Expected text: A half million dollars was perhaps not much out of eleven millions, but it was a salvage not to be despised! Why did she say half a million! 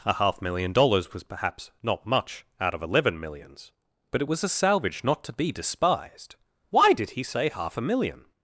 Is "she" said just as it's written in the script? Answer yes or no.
no